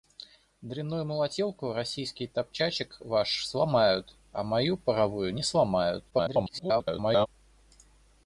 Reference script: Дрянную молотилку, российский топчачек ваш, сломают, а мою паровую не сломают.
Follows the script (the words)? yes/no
no